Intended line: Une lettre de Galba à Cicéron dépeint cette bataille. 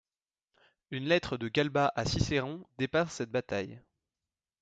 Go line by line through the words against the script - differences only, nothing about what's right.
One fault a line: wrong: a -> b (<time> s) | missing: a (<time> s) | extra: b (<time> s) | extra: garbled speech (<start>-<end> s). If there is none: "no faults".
no faults